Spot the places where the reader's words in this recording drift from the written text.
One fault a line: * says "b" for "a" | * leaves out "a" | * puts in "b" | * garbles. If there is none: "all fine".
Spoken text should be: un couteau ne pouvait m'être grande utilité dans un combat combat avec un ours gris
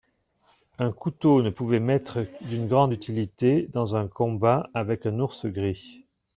* puts in "d'une"
* leaves out "combat"